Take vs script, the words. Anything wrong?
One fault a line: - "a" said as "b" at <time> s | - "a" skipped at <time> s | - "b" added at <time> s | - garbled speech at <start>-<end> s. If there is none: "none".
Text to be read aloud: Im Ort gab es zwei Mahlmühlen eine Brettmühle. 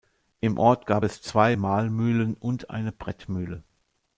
- "und" added at 2.4 s